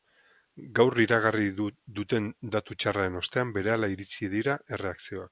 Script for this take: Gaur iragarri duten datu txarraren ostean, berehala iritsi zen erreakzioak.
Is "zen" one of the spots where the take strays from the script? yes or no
yes